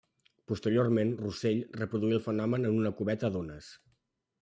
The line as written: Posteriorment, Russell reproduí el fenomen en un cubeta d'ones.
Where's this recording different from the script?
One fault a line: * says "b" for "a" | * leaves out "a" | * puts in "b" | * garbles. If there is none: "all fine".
* says "una" for "un"